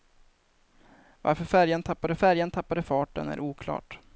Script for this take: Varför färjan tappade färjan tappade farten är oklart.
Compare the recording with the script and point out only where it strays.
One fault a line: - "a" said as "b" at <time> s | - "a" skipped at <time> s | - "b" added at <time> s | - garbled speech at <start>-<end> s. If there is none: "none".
none